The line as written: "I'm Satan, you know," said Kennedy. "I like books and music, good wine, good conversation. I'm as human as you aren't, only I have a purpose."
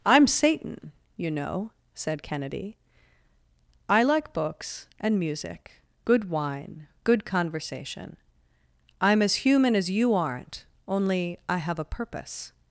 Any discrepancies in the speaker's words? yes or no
no